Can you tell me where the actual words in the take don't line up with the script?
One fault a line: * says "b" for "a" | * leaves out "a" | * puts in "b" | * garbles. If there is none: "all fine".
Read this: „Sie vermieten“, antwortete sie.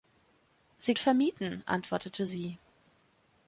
all fine